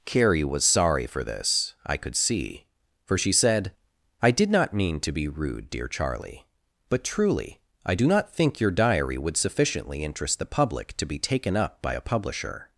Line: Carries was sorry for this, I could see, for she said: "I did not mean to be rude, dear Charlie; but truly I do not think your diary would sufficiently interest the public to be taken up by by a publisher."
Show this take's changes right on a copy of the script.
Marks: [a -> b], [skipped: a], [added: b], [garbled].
[Carries -> Carrie] was sorry for this, I could see, for she said: "I did not mean to be rude, dear Charlie; but truly I do not think your diary would sufficiently interest the public to be taken up by [skipped: by] a publisher."